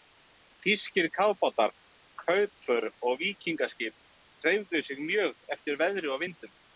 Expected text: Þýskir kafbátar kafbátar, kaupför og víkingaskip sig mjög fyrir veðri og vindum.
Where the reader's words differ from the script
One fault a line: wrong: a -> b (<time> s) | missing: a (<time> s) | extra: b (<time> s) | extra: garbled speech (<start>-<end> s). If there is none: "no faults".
missing: kafbátar (1.7 s)
extra: hreyfðu (4.5 s)
wrong: fyrir -> eftir (5.6 s)